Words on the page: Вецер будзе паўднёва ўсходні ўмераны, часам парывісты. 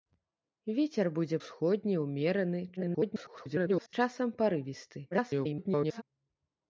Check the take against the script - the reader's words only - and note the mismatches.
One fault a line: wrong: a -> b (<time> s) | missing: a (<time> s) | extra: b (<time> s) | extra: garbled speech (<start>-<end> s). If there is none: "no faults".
missing: паўднёва (1.4 s)
extra: garbled speech (2.8-3.9 s)
extra: garbled speech (5.1-6.0 s)